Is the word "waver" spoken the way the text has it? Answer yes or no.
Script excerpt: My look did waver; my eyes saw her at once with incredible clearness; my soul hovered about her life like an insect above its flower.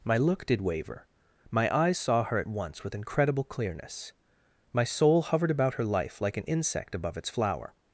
yes